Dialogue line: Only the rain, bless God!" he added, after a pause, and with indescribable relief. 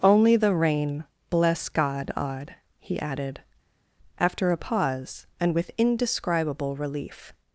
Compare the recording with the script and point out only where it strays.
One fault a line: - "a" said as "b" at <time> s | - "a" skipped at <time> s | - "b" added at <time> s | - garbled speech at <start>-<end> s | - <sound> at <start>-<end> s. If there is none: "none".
- "odd" added at 2.1 s